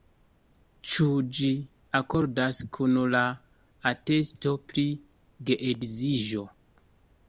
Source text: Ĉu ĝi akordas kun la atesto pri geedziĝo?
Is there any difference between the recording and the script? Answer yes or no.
no